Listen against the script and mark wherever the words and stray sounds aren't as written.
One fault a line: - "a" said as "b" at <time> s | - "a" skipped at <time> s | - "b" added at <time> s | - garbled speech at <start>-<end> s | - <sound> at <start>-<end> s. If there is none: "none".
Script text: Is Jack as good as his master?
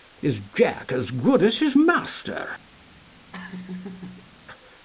- laugh at 3.3-4.3 s